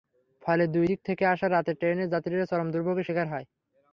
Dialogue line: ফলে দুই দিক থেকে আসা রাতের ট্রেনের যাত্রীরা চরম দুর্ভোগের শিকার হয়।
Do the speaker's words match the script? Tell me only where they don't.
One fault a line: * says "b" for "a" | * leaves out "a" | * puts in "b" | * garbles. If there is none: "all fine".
all fine